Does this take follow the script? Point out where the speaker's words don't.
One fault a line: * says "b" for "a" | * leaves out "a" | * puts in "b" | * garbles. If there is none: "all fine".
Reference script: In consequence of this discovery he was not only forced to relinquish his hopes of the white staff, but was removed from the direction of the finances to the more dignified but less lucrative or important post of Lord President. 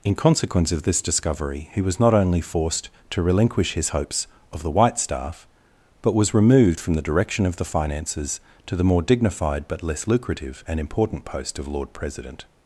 * says "and" for "or"